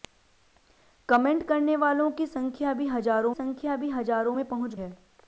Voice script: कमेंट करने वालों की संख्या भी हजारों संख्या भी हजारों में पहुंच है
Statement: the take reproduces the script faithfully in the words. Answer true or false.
true